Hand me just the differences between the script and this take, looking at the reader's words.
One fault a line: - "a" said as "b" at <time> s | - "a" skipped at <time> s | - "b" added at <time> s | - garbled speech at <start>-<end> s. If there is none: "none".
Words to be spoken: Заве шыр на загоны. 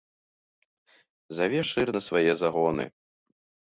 - "свае" added at 2.1 s